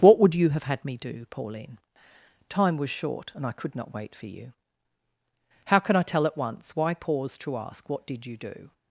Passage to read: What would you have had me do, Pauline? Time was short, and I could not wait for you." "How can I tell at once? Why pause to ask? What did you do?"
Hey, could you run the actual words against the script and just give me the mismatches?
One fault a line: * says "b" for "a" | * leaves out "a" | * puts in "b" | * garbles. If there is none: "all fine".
all fine